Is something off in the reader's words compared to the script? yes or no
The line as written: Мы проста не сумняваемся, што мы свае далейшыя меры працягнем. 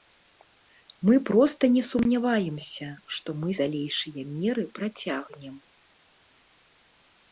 yes